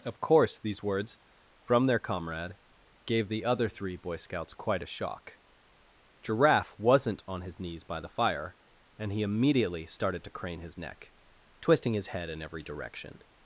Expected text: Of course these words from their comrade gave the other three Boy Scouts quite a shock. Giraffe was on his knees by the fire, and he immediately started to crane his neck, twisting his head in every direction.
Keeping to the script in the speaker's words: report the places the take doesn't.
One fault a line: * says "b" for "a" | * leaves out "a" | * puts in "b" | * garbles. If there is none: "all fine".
* says "wasn't" for "was"